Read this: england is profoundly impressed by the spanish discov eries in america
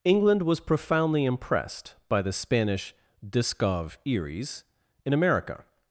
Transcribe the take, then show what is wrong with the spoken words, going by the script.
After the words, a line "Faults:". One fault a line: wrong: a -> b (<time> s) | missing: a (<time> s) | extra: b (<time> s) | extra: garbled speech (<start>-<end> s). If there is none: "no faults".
england was profoundly impressed by the spanish discov eries in america
Faults:
wrong: is -> was (0.4 s)